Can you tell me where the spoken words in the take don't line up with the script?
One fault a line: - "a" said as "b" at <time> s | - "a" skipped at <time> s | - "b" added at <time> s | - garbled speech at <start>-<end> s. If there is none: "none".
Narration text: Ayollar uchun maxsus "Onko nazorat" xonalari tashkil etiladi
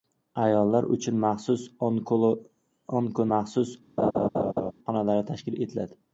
- "nazorat" said as "maxsus" at 3.3 s